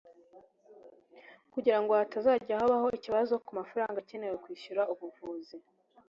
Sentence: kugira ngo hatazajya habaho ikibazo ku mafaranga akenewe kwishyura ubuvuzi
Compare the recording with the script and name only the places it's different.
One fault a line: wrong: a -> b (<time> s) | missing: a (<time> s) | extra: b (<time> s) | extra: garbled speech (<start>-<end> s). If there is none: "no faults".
no faults